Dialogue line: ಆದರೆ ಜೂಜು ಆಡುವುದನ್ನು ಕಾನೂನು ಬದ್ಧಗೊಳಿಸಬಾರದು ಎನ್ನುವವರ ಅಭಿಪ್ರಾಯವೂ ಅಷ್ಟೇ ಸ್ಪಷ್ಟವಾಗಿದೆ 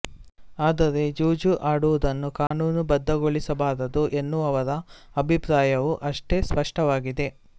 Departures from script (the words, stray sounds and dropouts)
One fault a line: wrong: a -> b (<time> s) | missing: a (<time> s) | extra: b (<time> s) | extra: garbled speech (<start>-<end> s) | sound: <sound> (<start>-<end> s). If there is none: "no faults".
sound: dropout (2.5-2.5 s)